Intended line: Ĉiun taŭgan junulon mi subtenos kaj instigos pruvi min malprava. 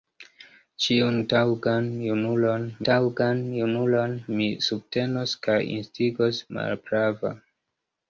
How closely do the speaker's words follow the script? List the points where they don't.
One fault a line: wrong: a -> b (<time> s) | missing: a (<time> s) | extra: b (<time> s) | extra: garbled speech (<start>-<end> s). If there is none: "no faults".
extra: taŭgan junulon (2.9 s)
missing: pruvi min (6.4 s)